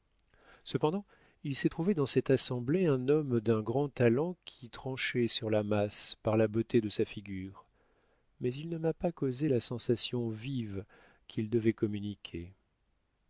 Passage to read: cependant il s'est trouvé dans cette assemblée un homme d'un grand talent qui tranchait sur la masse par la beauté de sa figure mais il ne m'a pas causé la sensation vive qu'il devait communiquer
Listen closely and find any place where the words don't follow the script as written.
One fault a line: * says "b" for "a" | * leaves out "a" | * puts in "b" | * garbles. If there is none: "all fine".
all fine